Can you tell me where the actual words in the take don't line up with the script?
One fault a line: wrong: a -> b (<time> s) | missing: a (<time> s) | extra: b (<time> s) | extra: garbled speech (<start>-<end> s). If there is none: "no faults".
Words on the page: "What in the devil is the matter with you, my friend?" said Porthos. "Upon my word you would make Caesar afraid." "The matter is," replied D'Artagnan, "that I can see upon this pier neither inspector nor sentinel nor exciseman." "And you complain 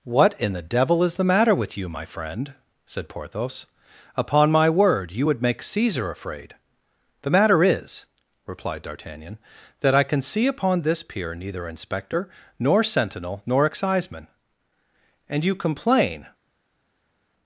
no faults